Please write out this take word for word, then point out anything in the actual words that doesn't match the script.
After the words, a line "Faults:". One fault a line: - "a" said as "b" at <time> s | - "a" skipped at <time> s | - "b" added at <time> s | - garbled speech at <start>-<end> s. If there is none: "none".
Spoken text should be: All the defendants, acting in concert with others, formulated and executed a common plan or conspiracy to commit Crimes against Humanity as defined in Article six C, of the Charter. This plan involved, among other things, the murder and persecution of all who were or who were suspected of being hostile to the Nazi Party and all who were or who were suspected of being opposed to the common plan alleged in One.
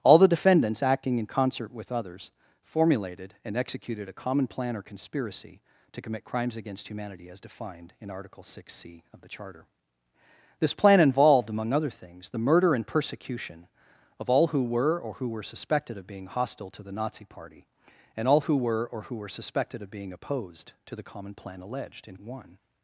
All the defendants, acting in concert with others, formulated and executed a common plan or conspiracy to commit Crimes against Humanity as defined in Article six C, of the Charter. This plan involved, among other things, the murder and persecution of all who were or who were suspected of being hostile to the Nazi Party and all who were or who were suspected of being opposed to the common plan alleged in One.
Faults:
none